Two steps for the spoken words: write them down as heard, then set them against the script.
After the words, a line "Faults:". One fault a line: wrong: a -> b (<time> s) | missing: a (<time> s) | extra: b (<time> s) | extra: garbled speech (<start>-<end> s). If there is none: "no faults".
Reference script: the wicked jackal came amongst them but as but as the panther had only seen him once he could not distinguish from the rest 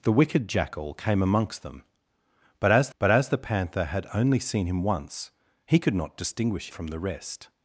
the wicked jackal came amongst them but as but as the panther had only seen him once he could not distinguish from the rest
Faults:
no faults